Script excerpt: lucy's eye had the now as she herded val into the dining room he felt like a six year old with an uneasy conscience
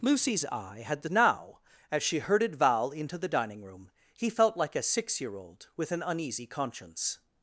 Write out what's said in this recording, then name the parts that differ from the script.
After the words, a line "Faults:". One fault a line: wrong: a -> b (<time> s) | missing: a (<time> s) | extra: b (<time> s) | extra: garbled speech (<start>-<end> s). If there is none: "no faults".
lucy's eye had the now as she herded val into the dining room he felt like a six year old with an uneasy conscience
Faults:
no faults